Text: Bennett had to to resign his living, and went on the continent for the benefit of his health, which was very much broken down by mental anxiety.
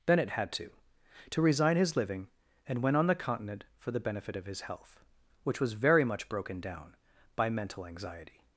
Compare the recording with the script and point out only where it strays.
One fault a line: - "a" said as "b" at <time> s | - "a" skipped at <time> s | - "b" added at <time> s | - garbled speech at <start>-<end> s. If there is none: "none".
none